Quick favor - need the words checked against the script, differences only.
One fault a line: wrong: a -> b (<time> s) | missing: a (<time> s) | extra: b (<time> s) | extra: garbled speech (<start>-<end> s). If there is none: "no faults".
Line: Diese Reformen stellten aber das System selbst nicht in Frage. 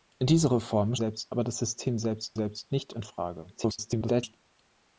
wrong: stellten -> selbst (0.9 s)
extra: selbst (2.3 s)
extra: garbled speech (3.5-4.3 s)